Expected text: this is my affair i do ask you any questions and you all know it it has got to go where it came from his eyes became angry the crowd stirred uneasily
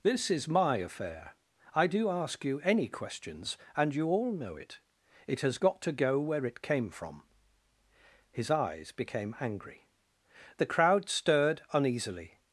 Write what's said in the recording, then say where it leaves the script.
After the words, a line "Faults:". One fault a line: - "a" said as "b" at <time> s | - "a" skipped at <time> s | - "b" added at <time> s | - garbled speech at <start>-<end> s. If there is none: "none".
this is my affair i do ask you any questions and you all know it it has got to go where it came from his eyes became angry the crowd stirred uneasily
Faults:
none